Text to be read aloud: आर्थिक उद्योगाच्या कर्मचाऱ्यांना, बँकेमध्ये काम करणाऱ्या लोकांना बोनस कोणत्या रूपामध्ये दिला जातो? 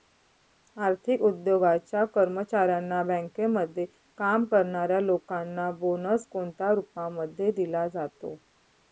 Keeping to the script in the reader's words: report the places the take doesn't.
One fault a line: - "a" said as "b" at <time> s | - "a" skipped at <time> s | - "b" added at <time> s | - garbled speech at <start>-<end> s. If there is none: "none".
none